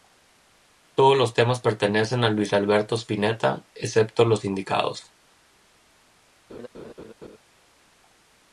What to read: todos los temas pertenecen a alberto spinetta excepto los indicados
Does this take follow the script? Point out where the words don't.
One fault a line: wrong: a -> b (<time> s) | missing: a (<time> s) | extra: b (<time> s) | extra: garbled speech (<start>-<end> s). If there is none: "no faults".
extra: luis (2.3 s)